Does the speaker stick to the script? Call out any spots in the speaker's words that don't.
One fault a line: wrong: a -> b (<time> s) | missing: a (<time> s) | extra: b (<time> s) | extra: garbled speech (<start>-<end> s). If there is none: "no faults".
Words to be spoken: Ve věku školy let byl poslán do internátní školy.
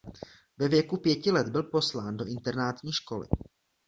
wrong: školy -> pěti (1.0 s)